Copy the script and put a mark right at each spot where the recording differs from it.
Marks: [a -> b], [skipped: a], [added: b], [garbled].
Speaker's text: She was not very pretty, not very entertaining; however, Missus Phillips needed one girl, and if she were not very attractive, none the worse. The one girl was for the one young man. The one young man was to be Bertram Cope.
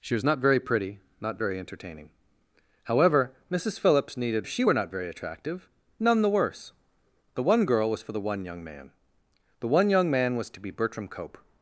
She was not very pretty, not very entertaining; however, Missus Phillips needed [skipped: one girl, and] if she were not very attractive, none the worse. The one girl was for the one young man. The one young man was to be Bertram Cope.